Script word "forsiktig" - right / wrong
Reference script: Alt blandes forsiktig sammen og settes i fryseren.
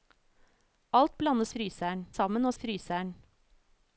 wrong